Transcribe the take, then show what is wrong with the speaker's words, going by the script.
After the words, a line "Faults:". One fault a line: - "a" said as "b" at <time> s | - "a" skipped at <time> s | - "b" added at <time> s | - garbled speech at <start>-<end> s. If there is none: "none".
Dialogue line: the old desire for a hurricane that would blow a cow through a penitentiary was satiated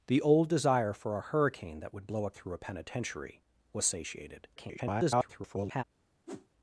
the old desire for a hurricane that would blow a through a penitentiary was satiated [garbled]
Faults:
- "cow" skipped at 2.3 s
- garbled speech at 4.6-5.8 s